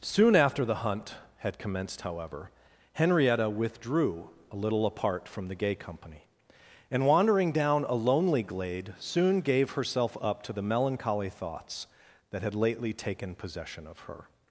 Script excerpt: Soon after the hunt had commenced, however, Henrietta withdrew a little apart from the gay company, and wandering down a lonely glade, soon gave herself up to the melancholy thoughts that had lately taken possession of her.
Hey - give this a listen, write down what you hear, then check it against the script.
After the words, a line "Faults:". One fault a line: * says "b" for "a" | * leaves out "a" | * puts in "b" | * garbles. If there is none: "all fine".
Soon after the hunt had commenced, however, Henrietta withdrew a little apart from the gay company, and wandering down a lonely glade, soon gave herself up to the melancholy thoughts that had lately taken possession of her.
Faults:
all fine